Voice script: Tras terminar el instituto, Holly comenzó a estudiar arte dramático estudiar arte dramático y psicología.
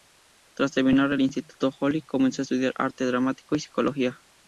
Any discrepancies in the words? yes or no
yes